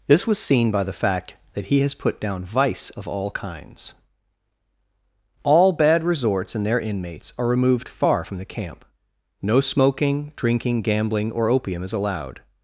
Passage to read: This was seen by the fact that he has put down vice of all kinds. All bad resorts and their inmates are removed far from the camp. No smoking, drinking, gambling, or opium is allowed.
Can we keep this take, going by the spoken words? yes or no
yes